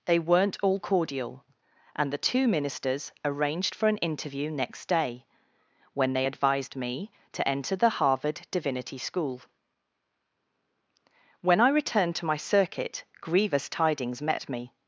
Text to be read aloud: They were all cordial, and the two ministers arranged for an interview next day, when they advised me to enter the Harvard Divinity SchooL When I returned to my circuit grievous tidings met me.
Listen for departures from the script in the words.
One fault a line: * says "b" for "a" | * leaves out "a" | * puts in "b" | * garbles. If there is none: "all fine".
* says "weren't" for "were"